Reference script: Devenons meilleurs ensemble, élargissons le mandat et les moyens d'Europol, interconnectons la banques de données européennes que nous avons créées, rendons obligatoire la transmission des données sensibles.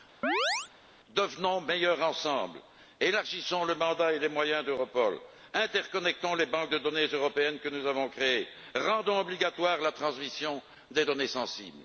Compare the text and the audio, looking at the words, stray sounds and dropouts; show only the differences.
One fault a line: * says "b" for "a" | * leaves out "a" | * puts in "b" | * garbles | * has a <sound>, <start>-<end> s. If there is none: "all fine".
* has a chirp, 0.2-0.7 s
* says "les" for "la"